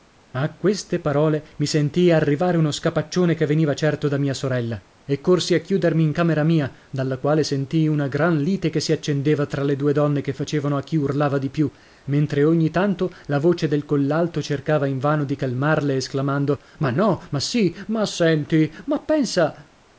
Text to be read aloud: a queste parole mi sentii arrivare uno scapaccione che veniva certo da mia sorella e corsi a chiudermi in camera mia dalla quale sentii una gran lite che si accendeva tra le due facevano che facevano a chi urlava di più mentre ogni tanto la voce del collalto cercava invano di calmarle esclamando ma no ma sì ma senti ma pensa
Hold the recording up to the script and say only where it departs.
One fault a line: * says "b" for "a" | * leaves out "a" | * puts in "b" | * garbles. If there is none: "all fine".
* says "donne" for "facevano"